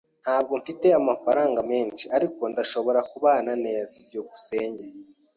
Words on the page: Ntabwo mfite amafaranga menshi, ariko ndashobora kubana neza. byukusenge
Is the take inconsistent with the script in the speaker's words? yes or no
no